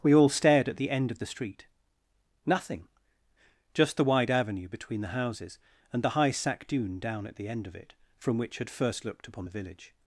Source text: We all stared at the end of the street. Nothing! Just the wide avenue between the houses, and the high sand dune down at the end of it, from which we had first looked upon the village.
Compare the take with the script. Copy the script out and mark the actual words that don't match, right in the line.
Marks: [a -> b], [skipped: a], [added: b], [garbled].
We all stared at the end of the street. Nothing! Just the wide avenue between the houses, and the high [sand -> sack] dune down at the end of it, from which [skipped: we] had first looked upon the village.